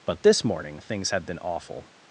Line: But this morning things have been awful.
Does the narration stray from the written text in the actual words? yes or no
yes